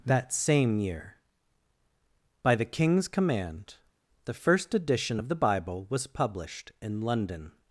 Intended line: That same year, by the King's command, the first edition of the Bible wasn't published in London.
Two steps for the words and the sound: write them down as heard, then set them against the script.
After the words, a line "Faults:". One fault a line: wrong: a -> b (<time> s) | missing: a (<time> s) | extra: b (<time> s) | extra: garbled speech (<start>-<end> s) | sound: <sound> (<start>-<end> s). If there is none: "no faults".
That same year, by the King's command, the first edition of the Bible was published in London.
Faults:
wrong: wasn't -> was (5.9 s)